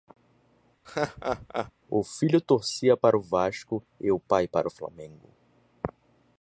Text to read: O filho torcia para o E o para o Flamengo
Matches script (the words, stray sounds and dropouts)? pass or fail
fail